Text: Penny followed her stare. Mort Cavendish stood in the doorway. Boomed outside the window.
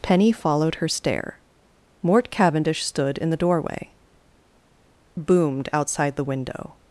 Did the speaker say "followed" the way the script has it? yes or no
yes